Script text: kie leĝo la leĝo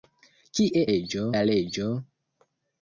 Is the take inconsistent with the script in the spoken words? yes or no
no